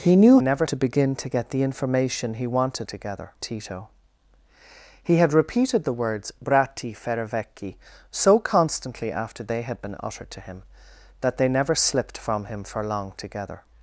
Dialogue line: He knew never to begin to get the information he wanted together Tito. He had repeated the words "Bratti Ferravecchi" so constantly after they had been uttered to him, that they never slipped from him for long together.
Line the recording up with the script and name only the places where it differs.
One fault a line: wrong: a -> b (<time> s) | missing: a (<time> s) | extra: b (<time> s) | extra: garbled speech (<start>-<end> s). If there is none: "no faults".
no faults